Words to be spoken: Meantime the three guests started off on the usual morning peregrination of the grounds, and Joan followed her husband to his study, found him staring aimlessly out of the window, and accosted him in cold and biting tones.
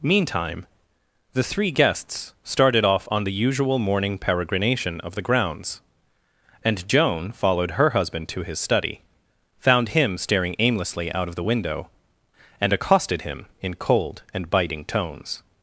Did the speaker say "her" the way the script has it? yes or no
yes